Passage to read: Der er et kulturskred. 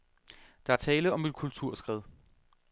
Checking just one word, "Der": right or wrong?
right